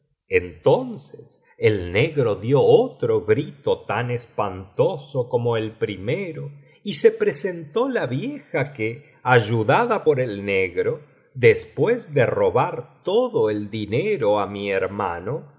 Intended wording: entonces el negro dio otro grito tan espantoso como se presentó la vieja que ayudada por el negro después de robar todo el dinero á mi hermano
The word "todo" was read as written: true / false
true